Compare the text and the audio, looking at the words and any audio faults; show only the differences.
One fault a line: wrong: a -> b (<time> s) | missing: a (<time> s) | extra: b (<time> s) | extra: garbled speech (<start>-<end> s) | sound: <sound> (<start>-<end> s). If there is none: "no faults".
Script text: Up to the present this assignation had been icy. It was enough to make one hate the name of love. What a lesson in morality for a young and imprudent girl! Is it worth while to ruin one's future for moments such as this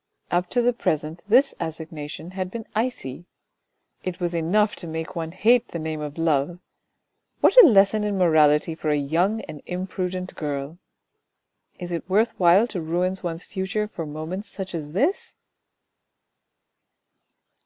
no faults